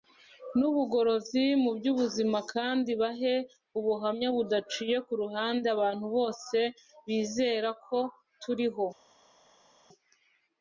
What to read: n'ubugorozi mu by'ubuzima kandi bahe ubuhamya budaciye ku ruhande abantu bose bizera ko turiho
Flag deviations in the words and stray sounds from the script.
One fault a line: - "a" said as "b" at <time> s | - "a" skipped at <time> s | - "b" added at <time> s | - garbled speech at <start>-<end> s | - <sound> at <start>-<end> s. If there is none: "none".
none